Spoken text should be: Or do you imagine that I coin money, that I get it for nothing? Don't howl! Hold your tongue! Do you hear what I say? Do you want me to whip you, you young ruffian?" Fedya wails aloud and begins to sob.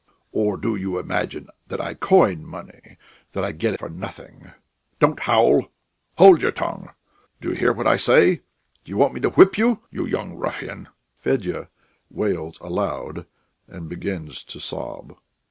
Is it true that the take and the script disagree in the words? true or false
true